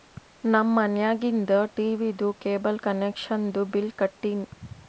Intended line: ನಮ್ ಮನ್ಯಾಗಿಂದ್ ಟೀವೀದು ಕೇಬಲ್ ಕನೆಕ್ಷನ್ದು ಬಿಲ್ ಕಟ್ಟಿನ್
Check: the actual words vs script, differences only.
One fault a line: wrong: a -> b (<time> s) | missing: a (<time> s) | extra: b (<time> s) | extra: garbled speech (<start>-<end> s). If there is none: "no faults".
no faults